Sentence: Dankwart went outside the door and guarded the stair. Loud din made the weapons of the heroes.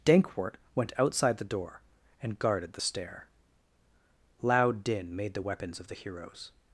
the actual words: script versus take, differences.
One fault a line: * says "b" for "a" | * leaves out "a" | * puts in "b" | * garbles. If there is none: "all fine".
all fine